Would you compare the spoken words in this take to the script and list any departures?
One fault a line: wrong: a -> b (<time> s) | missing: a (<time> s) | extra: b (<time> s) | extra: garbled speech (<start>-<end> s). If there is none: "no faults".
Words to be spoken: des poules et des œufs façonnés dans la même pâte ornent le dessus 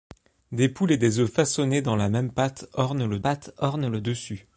extra: pâte ornent le (3.2 s)